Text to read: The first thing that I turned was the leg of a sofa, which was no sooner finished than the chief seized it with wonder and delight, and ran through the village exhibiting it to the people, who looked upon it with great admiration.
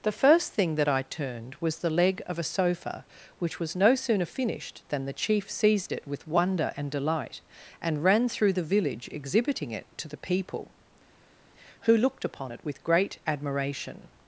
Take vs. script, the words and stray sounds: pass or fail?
pass